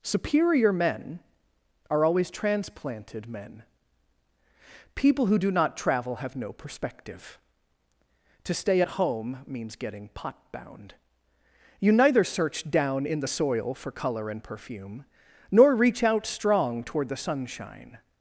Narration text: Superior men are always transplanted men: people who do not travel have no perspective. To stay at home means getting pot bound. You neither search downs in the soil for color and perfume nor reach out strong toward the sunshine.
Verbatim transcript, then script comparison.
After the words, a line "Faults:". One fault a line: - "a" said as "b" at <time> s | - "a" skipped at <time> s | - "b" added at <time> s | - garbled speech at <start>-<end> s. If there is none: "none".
Superior men are always transplanted men: people who do not travel have no perspective. To stay at home means getting pot bound. You neither search down in the soil for color and perfume nor reach out strong toward the sunshine.
Faults:
- "downs" said as "down" at 12.7 s